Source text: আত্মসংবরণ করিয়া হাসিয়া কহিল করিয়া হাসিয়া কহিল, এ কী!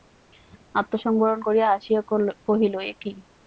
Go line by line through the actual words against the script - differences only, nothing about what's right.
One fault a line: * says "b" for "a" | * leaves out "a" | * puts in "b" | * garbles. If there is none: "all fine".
* leaves out "করিয়া হাসিয়া কহিল"